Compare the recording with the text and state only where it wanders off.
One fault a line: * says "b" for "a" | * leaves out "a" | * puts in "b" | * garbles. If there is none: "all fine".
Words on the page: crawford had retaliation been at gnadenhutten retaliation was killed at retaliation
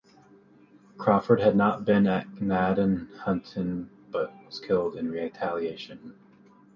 * says "not" for "retaliation"
* says "but" for "retaliation"
* says "in" for "at"